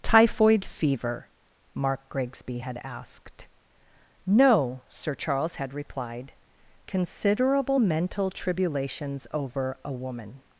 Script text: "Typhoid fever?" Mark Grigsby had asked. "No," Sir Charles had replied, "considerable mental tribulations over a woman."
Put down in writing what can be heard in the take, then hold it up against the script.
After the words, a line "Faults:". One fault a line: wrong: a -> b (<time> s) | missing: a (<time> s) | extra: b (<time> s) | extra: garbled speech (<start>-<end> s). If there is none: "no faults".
"Typhoid fever?" Mark Grigsby had asked. "No," Sir Charles had replied, "considerable mental tribulations over a woman."
Faults:
no faults